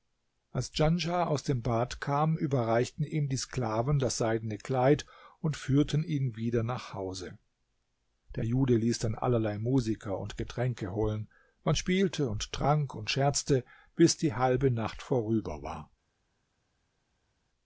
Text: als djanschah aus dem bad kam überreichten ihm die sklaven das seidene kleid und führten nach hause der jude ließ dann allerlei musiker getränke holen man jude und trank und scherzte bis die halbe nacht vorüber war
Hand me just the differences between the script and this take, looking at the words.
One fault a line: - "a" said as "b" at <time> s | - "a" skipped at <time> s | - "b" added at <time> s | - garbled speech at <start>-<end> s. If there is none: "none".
- "ihn wieder" added at 6.0 s
- "und" added at 10.2 s
- "jude" said as "spielte" at 11.7 s